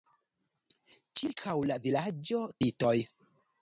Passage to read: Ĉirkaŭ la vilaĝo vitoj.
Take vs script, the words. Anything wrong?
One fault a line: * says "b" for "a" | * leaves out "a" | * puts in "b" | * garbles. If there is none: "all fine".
all fine